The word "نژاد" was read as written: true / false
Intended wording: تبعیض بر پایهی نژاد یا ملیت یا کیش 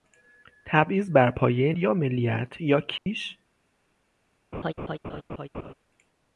false